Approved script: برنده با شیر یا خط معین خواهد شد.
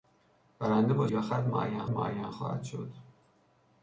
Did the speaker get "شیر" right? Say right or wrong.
wrong